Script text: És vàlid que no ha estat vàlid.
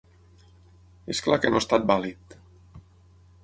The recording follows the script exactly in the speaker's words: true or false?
false